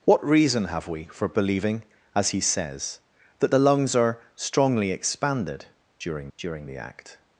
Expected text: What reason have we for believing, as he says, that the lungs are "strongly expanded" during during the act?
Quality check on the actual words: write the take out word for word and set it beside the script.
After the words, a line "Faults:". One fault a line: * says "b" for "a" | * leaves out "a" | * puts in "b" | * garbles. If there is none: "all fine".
What reason have we for believing, as he says, that the lungs are "strongly expanded" during during the act?
Faults:
all fine